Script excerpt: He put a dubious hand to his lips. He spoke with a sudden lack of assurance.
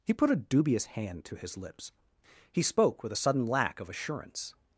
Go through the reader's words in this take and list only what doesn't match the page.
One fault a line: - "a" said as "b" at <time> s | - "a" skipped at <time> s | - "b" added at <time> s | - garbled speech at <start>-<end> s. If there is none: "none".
none